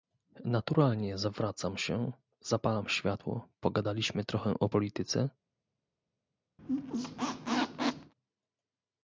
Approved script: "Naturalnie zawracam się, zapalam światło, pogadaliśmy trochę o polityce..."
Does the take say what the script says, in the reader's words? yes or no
yes